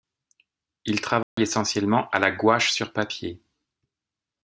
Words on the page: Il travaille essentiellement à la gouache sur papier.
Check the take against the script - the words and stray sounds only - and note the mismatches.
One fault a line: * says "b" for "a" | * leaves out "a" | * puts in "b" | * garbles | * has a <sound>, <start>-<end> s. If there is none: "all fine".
* has a dropout, 1.2-1.4 s